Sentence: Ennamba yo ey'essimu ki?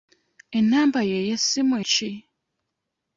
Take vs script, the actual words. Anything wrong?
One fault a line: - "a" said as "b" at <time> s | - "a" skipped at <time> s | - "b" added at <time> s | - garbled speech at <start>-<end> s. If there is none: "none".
none